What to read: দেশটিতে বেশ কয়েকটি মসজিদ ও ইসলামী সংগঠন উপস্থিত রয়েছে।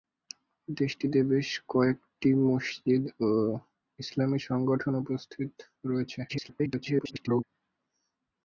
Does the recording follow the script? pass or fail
fail